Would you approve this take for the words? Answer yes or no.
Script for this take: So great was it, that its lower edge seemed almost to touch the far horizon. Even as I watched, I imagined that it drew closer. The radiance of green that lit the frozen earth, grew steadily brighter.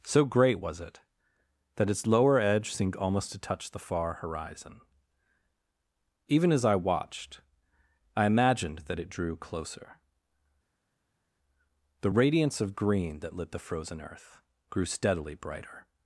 yes